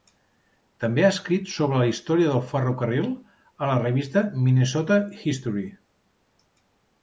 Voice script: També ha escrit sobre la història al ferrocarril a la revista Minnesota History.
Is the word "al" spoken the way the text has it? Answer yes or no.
no